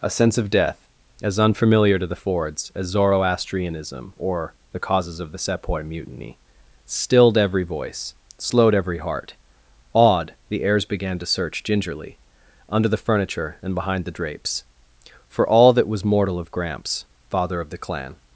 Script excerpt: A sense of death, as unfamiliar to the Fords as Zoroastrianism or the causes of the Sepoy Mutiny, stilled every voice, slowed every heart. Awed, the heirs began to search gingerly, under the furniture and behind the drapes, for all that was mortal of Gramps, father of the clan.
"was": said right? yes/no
yes